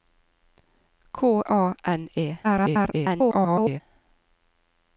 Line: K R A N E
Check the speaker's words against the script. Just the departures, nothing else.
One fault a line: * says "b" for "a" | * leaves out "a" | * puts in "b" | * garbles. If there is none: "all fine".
* leaves out "R"
* garbles